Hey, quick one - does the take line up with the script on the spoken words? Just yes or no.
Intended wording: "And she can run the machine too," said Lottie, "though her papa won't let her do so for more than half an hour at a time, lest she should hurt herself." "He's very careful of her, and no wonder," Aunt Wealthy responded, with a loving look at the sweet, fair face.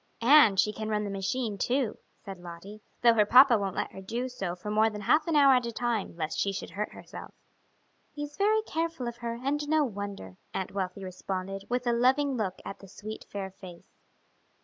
yes